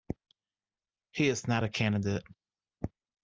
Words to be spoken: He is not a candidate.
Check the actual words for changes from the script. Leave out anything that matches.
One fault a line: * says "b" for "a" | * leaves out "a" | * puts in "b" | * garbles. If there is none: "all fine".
all fine